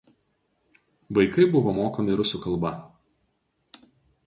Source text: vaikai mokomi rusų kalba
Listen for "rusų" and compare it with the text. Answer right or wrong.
right